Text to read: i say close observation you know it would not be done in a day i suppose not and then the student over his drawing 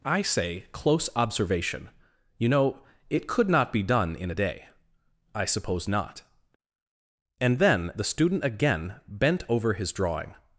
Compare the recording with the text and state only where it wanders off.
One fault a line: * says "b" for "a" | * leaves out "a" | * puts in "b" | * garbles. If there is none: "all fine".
* says "could" for "would"
* puts in "again bent"